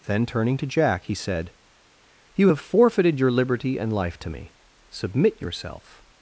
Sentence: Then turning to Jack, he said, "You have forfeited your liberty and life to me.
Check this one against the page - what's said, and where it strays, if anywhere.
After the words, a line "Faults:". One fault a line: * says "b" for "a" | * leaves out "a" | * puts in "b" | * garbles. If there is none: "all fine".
Then turning to Jack, he said, "You have forfeited your liberty and life to me. Submit yourself
Faults:
* puts in "Submit yourself"